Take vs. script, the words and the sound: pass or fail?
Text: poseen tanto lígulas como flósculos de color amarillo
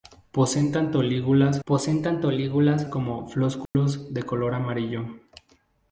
fail